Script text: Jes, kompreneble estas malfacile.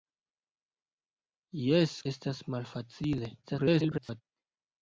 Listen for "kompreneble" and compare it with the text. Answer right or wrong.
wrong